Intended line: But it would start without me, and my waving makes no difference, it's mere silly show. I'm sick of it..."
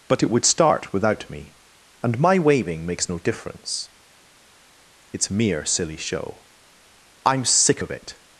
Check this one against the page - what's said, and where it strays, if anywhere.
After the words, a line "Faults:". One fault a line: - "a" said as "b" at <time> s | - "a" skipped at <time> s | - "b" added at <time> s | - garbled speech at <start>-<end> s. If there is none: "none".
But it would start without me, and my waving makes no difference, it's mere silly show. I'm sick of it..."
Faults:
none